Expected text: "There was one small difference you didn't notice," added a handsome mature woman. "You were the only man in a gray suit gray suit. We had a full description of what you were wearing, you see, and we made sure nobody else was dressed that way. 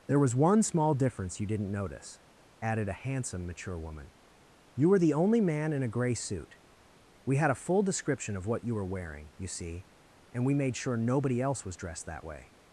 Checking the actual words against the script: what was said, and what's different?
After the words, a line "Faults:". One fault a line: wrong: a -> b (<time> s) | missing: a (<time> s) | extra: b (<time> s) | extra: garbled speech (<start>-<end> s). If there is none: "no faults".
"There was one small difference you didn't notice," added a handsome mature woman. "You were the only man in a gray suit. We had a full description of what you were wearing, you see, and we made sure nobody else was dressed that way.
Faults:
missing: gray suit (6.6 s)